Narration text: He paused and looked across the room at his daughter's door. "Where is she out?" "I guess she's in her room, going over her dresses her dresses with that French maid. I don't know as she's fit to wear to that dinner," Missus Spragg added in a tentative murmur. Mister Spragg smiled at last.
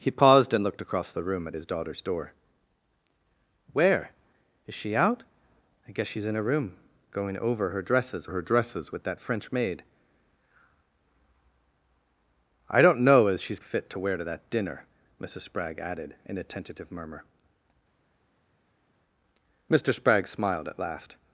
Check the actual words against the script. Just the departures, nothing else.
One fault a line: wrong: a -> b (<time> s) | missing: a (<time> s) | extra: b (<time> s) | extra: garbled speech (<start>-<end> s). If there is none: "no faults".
no faults